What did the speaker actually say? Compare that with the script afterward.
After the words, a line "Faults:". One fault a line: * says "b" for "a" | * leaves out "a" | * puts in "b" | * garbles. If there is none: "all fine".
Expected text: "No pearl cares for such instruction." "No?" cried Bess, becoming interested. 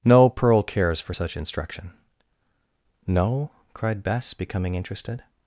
"No pearl cares for such instruction." "No?" cried Bess, becoming interested.
Faults:
all fine